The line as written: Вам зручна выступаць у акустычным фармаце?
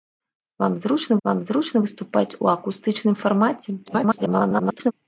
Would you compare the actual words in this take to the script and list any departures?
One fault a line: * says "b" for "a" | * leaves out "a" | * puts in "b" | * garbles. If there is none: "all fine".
* puts in "вам зручна"
* garbles